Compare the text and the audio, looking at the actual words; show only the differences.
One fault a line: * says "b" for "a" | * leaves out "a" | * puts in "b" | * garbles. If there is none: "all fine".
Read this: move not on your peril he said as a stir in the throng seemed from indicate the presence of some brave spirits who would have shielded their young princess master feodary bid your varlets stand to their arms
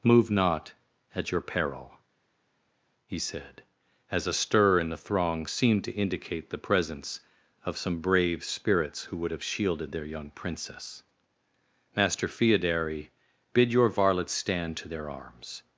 * says "at" for "on"
* says "to" for "from"